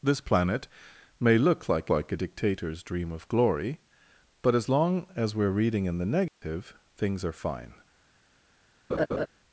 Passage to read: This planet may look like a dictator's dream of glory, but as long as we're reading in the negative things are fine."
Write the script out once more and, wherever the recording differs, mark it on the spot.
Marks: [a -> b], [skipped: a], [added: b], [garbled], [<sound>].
This planet may look like [added: like] a dictator's dream of glory, but as long as we're reading in the negative [dropout] things are fine." [laugh]